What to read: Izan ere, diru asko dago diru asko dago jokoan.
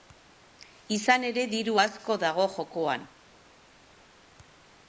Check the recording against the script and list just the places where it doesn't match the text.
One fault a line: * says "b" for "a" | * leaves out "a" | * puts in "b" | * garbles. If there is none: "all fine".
* leaves out "diru asko dago"